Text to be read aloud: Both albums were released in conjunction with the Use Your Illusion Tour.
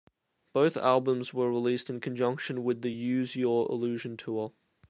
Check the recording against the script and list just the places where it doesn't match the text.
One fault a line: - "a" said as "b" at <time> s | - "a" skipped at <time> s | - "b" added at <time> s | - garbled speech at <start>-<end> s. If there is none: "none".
none